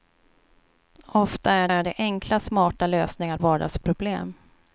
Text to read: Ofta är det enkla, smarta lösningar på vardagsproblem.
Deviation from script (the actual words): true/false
true